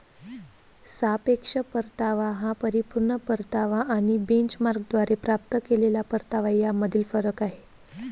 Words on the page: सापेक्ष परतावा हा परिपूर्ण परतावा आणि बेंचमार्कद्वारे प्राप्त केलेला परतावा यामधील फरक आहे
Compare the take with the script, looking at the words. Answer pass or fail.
pass